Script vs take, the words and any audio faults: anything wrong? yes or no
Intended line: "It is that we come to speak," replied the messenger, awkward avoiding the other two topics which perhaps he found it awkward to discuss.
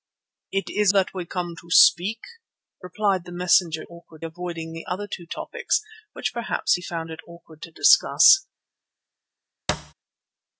yes